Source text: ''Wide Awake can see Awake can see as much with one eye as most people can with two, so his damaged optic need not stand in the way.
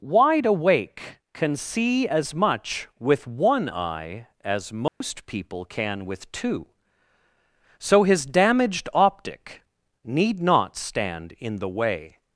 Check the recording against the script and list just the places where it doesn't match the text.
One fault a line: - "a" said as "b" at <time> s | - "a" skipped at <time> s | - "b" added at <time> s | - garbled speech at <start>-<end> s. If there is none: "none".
- "Awake can see" skipped at 2.1 s